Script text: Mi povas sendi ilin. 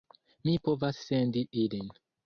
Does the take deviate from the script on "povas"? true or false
false